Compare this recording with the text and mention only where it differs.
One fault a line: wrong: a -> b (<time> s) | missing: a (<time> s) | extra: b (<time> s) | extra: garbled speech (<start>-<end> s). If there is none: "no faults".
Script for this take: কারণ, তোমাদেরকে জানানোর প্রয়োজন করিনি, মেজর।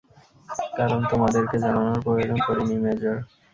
no faults